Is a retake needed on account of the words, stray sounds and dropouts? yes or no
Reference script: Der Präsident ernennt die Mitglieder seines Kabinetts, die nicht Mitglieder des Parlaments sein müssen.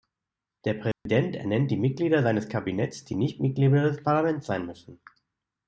yes